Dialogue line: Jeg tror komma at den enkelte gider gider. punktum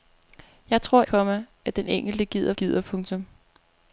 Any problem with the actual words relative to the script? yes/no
no